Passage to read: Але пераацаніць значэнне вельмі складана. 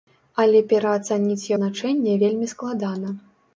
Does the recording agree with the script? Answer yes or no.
yes